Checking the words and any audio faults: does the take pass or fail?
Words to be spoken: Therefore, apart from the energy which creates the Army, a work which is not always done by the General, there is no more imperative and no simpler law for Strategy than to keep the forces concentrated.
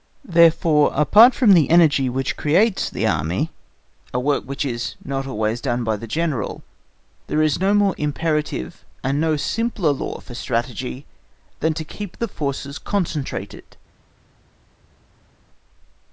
pass